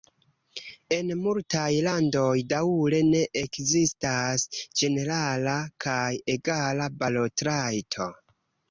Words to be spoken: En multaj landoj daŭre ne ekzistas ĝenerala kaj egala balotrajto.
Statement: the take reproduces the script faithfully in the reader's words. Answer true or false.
true